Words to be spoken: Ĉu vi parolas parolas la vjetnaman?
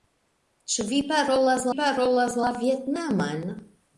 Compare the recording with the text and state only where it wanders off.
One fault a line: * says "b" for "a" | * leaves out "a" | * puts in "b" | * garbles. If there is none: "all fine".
all fine